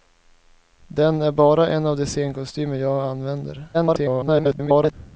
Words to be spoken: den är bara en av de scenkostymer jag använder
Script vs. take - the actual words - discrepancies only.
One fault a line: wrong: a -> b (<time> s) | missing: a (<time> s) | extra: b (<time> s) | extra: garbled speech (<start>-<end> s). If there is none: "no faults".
extra: garbled speech (3.7-4.9 s)